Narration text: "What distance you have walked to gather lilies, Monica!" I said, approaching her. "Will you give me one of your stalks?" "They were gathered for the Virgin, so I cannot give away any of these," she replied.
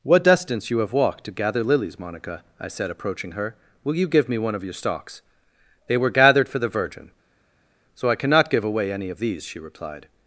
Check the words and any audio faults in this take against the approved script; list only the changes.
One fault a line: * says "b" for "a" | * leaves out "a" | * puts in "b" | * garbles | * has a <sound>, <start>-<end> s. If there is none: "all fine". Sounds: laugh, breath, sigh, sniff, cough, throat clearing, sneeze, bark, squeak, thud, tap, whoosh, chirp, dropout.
all fine